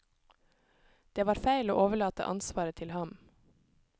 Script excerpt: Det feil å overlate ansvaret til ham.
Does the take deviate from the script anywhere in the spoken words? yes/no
yes